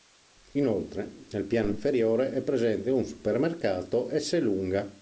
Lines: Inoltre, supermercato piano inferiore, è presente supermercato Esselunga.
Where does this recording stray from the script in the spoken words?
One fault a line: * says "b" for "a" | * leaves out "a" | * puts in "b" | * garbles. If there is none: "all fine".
* says "nel" for "supermercato"
* puts in "un"